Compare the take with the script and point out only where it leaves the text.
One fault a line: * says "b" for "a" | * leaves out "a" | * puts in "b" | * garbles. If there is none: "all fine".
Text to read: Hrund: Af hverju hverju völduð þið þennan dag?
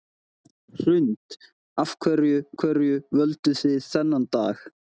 all fine